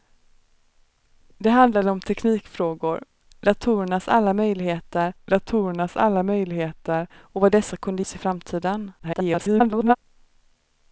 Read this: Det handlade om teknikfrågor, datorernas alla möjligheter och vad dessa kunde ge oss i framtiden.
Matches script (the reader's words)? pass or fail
fail